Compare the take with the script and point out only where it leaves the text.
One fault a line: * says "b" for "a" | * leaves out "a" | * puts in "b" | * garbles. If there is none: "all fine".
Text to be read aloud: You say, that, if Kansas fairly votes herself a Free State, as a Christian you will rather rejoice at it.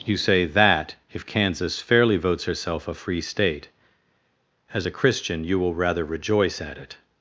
all fine